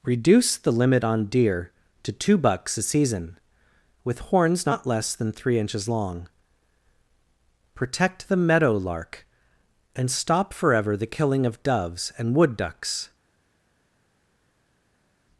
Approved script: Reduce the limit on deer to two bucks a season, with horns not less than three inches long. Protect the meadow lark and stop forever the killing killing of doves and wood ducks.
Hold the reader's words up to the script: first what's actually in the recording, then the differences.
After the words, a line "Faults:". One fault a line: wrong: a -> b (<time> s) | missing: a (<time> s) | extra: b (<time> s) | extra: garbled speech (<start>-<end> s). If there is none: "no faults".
Reduce the limit on deer to two bucks a season, with horns not less than three inches long. Protect the meadow lark and stop forever the killing of doves and wood ducks.
Faults:
missing: killing (11.5 s)